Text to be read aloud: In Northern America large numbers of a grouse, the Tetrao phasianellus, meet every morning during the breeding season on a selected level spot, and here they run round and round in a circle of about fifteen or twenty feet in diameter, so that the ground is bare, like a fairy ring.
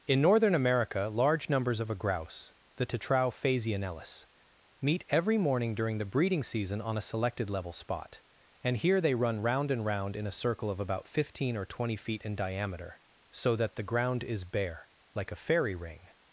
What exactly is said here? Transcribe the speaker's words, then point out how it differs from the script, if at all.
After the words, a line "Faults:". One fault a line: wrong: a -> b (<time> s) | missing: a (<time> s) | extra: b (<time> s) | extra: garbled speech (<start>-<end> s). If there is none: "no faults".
In Northern America large numbers of a grouse, the Tetrao phasianellus, meet every morning during the breeding season on a selected level spot, and here they run round and round in a circle of about fifteen or twenty feet in diameter, so that the ground is bare, like a fairy ring.
Faults:
no faults